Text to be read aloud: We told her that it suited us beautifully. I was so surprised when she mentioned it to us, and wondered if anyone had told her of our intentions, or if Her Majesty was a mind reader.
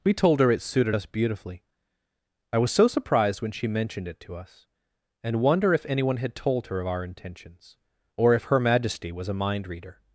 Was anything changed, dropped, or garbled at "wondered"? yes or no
yes